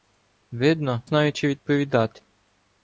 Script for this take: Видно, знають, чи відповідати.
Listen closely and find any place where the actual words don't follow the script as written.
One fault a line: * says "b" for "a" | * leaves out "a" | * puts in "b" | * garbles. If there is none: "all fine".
all fine